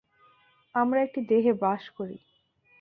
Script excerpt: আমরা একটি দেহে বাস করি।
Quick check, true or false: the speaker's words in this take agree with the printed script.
true